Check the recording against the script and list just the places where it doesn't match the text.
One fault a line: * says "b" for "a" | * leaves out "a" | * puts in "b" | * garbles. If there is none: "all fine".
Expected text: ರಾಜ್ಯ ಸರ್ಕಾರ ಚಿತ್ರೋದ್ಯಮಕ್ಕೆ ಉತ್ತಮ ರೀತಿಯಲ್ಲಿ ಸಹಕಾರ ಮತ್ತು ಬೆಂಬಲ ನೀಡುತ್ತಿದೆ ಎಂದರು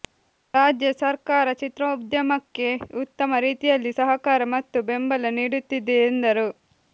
all fine